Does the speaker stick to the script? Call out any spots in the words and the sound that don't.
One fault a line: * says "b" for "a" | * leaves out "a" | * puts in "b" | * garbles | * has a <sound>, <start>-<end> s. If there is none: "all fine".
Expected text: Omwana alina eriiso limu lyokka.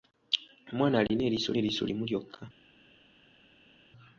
* puts in "eriiso"